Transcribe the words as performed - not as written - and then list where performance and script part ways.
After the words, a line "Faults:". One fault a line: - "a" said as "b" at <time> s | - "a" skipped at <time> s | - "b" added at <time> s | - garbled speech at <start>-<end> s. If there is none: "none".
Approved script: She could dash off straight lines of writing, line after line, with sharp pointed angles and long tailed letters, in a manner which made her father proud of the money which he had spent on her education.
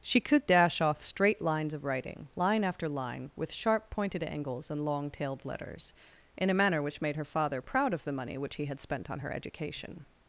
She could dash off straight lines of writing, line after line, with sharp pointed angles and long tailed letters, in a manner which made her father proud of the money which he had spent on her education.
Faults:
none